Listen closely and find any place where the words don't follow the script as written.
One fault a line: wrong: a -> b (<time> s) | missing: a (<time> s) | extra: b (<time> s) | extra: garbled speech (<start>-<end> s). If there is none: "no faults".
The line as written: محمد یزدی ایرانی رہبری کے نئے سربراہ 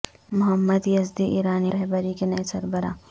no faults